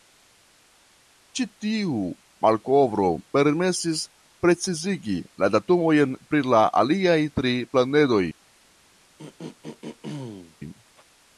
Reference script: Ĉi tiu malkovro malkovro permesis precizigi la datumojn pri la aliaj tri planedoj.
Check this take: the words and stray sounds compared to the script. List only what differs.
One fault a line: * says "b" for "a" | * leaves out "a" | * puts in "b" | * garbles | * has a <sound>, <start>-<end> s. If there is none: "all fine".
* leaves out "malkovro"
* has a throat clearing, 9.2-10.6 s